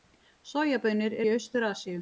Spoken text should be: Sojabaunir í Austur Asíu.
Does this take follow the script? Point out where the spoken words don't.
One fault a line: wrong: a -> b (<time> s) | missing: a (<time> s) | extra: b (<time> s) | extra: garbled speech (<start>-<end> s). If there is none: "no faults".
no faults